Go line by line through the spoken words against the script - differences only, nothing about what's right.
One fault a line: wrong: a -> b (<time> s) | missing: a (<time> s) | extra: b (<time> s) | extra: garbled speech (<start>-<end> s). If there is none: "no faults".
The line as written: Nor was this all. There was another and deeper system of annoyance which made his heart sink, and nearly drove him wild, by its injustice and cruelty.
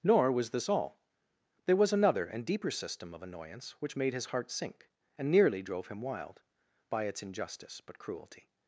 wrong: and -> but (7.8 s)